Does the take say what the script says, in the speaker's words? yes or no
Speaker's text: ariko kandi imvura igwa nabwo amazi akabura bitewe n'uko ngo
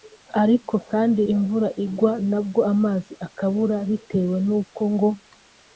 yes